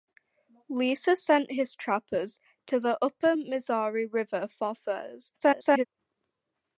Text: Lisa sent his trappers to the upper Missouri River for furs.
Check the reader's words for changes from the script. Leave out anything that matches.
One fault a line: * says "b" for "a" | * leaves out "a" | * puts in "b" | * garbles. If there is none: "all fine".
* garbles